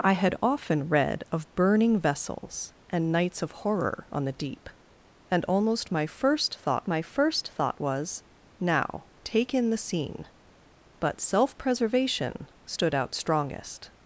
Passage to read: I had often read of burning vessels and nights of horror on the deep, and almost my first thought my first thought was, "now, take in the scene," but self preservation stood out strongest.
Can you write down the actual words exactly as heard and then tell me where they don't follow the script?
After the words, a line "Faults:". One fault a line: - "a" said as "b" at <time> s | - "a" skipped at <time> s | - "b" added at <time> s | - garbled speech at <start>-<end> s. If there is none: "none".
I had often read of burning vessels and nights of horror on the deep, and almost my first thought my first thought was, "now, take in the scene," but self preservation stood out strongest.
Faults:
none